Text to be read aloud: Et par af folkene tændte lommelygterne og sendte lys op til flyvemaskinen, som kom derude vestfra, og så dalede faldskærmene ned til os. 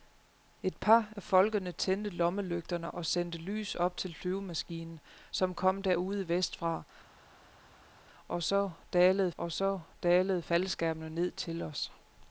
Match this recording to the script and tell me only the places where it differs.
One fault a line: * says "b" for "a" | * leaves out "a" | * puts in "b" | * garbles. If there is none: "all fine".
* puts in "og så dalede"